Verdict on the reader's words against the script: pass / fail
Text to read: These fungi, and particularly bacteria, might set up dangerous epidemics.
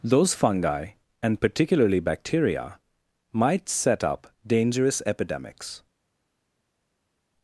fail